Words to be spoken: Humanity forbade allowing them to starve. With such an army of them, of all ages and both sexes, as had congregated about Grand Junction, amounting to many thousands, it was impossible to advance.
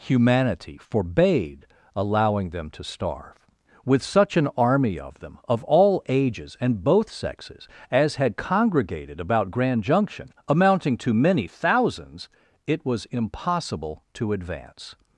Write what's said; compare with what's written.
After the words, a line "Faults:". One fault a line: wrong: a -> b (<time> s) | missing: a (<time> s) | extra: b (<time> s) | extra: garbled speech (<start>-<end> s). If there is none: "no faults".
Humanity forbade allowing them to starve. With such an army of them, of all ages and both sexes, as had congregated about Grand Junction, amounting to many thousands, it was impossible to advance.
Faults:
no faults